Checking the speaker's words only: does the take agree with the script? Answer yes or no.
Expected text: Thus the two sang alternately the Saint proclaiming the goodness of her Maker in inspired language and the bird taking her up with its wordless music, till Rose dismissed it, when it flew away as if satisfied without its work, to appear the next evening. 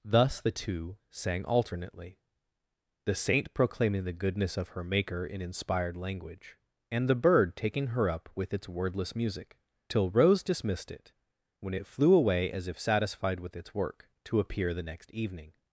no